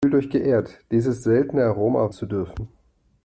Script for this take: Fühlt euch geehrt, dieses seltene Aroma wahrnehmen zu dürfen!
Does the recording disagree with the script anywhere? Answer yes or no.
yes